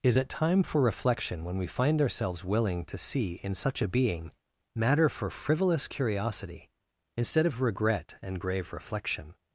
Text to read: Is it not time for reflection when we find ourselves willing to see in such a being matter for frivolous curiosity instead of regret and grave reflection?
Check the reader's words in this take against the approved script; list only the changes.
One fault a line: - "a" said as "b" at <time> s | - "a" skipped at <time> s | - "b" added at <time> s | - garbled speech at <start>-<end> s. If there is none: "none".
- "not" skipped at 0.3 s